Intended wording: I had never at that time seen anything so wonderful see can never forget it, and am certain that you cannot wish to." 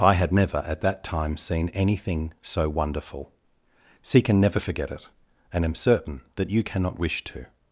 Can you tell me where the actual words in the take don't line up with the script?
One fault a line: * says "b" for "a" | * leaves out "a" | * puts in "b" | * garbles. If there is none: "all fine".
all fine